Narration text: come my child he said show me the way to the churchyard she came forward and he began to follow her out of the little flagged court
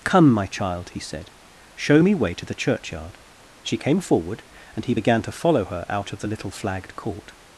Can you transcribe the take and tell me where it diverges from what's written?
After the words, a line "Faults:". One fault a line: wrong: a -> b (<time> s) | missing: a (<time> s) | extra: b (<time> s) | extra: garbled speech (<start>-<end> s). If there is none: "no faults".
come my child he said show me way to the churchyard she came forward and he began to follow her out of the little flagged court
Faults:
missing: the (2.1 s)